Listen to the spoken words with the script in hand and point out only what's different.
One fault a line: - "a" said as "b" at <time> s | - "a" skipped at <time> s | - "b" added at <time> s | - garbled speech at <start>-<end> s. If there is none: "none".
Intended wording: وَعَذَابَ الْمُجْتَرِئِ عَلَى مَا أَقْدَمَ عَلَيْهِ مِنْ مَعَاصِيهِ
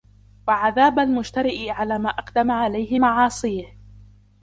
- "مِنْ" skipped at 3.0 s